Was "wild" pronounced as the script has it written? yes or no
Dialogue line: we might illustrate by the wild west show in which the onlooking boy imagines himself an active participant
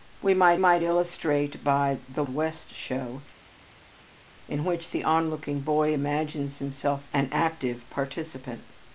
no